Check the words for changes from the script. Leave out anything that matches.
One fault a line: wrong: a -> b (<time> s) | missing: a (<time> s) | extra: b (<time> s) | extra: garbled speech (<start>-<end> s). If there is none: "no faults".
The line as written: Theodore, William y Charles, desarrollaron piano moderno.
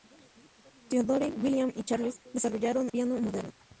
no faults